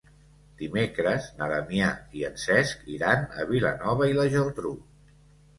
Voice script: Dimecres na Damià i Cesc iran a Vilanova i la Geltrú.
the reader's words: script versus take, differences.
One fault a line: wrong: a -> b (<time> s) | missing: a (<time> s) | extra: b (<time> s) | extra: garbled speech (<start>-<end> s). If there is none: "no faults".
extra: en (2.3 s)